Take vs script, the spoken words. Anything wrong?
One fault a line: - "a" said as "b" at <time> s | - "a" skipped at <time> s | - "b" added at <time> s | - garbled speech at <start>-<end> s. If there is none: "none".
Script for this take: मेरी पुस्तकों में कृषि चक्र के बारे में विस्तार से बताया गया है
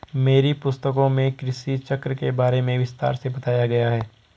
none